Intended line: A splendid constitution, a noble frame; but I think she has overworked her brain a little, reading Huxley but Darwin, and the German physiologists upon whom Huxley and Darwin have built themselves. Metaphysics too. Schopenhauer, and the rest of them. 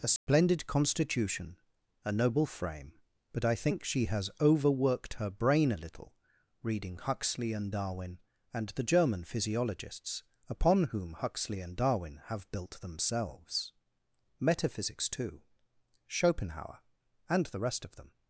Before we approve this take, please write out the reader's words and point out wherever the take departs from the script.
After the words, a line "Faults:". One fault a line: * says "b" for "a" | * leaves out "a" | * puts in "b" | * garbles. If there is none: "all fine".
A splendid constitution, a noble frame; but I think she has overworked her brain a little, reading Huxley and Darwin, and the German physiologists upon whom Huxley and Darwin have built themselves. Metaphysics too. Schopenhauer, and the rest of them.
Faults:
* says "and" for "but"